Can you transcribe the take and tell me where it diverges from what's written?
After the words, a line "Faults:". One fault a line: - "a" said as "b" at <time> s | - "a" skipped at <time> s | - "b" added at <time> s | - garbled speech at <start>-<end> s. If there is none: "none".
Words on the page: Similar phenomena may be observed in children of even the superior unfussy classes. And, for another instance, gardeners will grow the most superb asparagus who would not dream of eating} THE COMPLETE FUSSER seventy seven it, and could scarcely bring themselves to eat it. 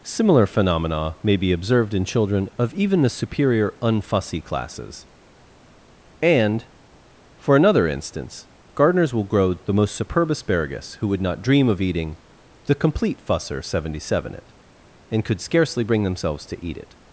Similar phenomena may be observed in children of even the superior unfussy classes. And, for another instance, gardeners will grow the most superb asparagus who would not dream of eating} THE COMPLETE FUSSER seventy seven it, and could scarcely bring themselves to eat it.
Faults:
none